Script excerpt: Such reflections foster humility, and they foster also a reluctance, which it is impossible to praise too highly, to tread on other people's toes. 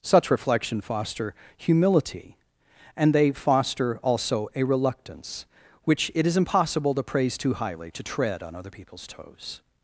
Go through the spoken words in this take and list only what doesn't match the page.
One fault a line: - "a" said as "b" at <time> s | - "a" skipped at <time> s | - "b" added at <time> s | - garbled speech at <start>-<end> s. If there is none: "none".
- "reflections" said as "reflection" at 0.3 s